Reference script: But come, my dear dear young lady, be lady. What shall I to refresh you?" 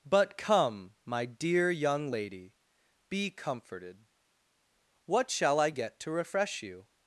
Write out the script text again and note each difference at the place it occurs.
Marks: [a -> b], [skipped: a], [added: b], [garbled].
But come, my dear [skipped: dear] young lady, be [lady. -> comforted] What shall I [added: get] to refresh you?"